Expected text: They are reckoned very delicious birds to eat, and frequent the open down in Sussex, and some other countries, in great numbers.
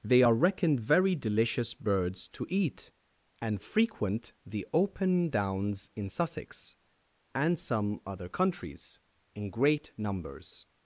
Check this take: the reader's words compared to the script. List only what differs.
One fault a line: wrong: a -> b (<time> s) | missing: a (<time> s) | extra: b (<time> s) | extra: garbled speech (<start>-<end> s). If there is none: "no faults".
wrong: down -> downs (5.3 s)